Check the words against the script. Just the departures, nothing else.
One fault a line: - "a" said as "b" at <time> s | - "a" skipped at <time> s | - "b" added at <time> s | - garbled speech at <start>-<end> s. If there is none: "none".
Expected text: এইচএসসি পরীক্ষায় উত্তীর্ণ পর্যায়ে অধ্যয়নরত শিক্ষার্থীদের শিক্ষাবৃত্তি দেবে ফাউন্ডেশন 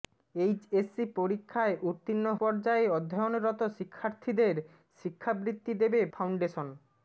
none